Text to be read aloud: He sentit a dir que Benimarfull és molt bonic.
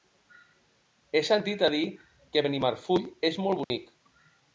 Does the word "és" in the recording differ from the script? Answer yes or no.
no